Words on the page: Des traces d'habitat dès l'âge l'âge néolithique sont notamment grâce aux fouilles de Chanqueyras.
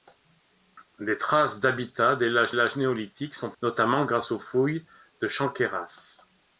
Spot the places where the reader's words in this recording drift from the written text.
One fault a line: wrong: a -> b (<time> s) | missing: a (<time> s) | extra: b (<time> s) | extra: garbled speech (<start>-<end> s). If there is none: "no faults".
no faults